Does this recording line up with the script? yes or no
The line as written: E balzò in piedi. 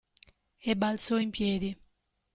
yes